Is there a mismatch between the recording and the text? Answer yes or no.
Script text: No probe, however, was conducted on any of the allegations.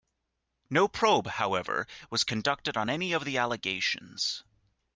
no